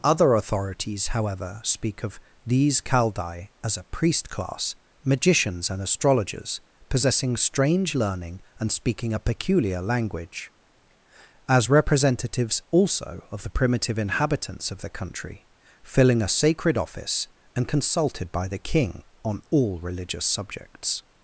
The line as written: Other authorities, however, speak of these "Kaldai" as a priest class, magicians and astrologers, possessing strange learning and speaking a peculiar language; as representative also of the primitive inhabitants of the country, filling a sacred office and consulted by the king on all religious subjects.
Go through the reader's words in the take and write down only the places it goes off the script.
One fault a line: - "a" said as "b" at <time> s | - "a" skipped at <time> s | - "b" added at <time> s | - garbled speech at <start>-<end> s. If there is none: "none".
- "representative" said as "representatives" at 11.7 s